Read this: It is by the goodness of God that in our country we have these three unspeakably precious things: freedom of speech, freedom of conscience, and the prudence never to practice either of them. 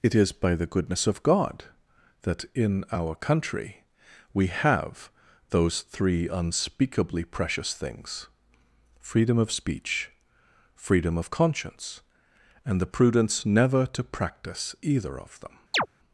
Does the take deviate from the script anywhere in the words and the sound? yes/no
yes